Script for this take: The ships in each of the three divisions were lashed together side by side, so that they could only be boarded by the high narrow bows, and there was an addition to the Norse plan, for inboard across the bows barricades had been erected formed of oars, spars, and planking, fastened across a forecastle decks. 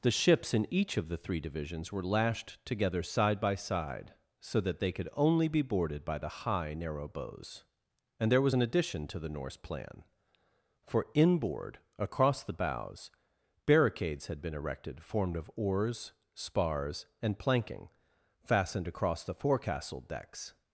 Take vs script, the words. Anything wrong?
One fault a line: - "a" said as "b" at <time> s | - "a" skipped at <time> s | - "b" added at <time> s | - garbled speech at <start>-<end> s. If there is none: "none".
- "a" said as "the" at 19.2 s